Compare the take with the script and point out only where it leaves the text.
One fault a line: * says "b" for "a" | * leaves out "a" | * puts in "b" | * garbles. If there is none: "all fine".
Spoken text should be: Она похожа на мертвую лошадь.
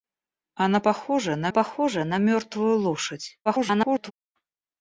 * puts in "похожа на"
* garbles